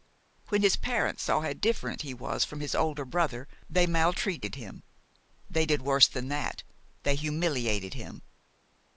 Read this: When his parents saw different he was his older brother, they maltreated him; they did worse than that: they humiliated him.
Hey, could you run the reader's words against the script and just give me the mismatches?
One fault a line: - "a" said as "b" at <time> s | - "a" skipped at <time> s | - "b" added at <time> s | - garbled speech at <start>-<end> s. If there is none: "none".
- "how" added at 1.4 s
- "from" added at 2.4 s